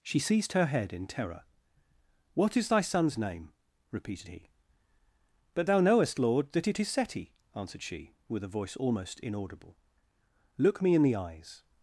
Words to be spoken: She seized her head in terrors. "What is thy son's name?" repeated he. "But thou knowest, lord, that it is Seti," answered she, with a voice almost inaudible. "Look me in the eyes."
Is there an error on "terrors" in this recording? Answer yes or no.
yes